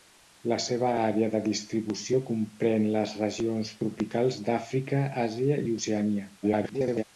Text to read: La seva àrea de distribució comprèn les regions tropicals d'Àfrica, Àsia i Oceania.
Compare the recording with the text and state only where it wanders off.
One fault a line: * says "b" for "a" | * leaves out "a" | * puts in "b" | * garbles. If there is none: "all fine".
* garbles